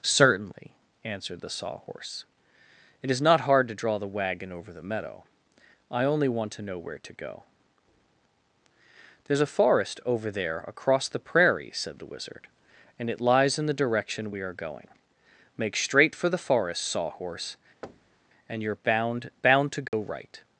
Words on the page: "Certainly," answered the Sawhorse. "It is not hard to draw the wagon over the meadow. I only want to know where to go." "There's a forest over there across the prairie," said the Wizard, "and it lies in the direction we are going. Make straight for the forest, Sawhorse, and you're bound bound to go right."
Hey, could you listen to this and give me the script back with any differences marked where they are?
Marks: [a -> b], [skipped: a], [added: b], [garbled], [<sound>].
"Certainly," answered the Sawhorse. "It is not hard to draw the wagon over the meadow. I only want to know where to go." "There's a forest over there across the prairie," said the Wizard, "and it lies in the direction we are going. Make straight for the forest, Sawhorse, [thud] and you're bound bound to go [dropout] right."